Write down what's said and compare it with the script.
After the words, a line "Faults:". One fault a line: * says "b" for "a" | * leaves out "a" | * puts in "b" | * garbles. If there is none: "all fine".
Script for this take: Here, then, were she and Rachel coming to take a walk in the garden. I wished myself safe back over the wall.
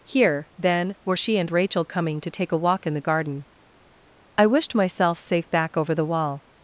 Here, then, were she and Rachel coming to take a walk in the garden. I wished myself safe back over the wall.
Faults:
all fine